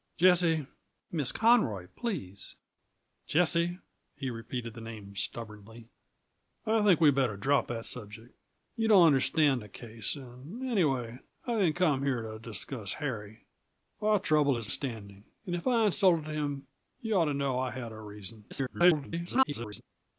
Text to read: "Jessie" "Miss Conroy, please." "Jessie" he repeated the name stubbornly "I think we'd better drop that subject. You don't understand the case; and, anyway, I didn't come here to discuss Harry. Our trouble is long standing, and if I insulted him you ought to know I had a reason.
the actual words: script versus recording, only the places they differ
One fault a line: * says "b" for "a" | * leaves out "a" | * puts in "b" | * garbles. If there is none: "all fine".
* leaves out "long"
* garbles